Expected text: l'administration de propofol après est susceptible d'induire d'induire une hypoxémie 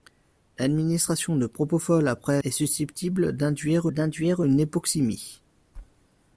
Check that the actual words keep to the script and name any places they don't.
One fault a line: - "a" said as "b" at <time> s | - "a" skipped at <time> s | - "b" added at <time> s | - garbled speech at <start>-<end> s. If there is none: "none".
none